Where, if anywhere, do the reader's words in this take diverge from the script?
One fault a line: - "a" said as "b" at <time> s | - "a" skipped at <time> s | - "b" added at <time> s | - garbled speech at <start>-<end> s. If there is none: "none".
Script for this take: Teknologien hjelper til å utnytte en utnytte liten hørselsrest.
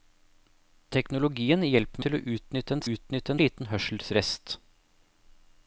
none